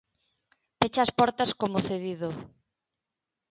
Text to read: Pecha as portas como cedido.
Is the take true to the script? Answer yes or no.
yes